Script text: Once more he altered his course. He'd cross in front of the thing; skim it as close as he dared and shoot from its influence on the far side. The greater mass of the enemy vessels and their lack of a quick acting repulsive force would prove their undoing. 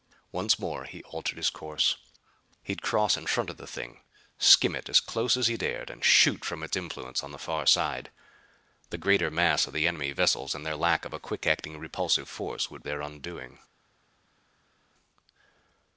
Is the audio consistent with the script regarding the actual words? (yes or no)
no